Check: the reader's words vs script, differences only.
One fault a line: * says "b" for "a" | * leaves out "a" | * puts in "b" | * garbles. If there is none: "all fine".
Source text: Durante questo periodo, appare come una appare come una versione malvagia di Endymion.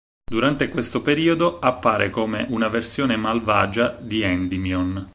* leaves out "appare come una"